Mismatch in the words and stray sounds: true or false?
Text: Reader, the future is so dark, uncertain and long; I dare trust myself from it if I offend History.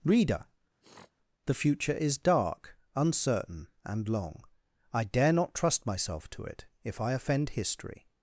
true